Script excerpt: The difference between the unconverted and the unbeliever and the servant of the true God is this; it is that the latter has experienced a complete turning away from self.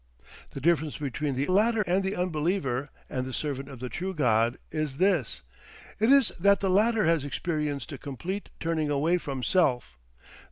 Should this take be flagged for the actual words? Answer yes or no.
yes